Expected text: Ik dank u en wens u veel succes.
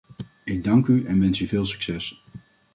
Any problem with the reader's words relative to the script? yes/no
no